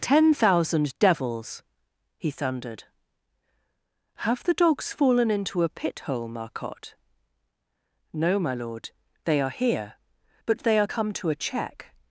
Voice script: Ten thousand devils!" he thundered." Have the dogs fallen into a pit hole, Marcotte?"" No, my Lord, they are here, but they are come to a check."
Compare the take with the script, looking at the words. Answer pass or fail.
pass